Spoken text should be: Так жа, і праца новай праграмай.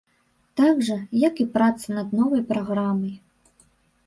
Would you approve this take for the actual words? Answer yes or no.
no